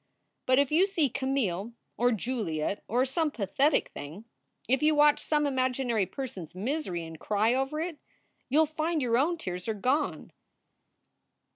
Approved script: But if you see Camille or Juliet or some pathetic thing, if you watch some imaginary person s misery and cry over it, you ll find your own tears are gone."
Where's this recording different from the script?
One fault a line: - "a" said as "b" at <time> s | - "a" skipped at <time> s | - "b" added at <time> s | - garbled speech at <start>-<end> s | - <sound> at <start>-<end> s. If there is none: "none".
none